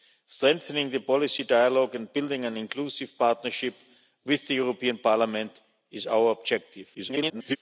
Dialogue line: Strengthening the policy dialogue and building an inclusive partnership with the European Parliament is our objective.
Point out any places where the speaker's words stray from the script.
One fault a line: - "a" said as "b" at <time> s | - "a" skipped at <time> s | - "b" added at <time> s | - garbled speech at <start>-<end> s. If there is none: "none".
- garbled speech at 6.9-7.6 s